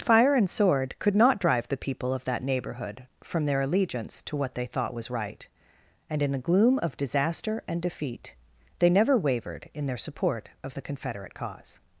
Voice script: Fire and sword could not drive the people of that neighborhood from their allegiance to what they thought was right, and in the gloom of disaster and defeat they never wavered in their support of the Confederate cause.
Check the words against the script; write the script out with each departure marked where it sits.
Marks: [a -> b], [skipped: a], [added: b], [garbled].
Fire and sword could not drive the people of that neighborhood from their allegiance to what they thought was right, and in the gloom of disaster and defeat they never wavered in their support of the Confederate cause.